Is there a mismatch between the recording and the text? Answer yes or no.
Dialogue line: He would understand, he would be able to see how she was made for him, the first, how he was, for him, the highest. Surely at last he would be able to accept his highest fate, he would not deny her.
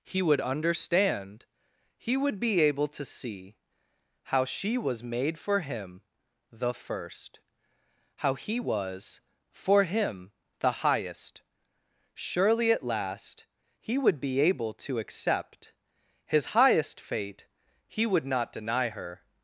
no